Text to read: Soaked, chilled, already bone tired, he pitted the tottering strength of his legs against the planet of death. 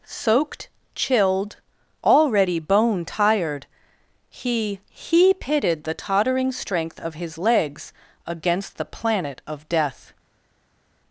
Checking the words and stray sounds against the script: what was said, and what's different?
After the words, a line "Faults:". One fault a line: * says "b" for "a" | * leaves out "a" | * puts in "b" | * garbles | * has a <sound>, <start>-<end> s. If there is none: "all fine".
Soaked, chilled, already bone tired, he he pitted the tottering strength of his legs against the planet of death.
Faults:
* puts in "he"